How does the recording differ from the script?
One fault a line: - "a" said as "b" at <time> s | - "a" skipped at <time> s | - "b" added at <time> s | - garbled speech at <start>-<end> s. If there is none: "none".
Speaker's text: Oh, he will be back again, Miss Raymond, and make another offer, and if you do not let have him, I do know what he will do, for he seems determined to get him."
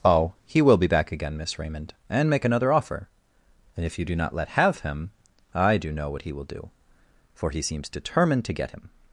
none